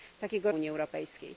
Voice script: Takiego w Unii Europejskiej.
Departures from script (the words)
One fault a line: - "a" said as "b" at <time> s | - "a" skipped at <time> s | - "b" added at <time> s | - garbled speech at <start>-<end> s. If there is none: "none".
none